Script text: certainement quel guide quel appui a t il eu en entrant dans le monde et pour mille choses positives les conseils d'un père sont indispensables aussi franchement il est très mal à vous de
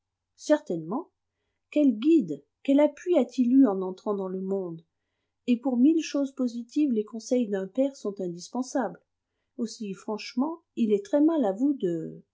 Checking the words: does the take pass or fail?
pass